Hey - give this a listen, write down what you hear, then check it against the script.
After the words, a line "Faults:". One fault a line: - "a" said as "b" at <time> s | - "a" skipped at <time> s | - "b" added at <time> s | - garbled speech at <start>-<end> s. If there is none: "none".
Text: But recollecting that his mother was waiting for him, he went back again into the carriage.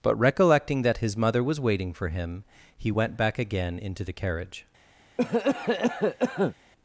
But recollecting that his mother was waiting for him, he went back again into the carriage.
Faults:
none